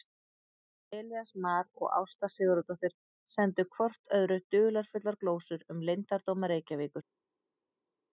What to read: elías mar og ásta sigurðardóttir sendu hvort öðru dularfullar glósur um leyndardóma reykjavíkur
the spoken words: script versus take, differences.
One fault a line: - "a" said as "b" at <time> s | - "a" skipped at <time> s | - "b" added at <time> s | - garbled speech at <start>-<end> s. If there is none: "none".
none